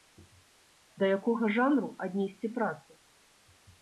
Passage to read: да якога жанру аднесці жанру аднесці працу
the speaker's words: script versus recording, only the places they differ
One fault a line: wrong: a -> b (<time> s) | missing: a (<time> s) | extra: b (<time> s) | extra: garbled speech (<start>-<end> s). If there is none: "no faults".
missing: жанру аднесці (2.5 s)